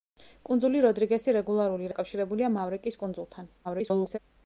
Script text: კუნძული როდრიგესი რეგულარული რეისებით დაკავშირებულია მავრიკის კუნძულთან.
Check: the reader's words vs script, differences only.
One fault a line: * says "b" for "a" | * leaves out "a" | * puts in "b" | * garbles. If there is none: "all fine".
* leaves out "რეისებით"
* garbles